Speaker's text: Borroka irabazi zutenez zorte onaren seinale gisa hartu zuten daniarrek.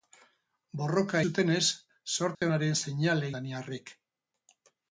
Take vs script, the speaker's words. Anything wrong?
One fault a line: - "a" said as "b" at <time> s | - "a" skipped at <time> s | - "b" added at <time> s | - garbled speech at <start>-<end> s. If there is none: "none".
- "irabazi" skipped at 1.2 s
- "gisa hartu zuten" skipped at 3.3 s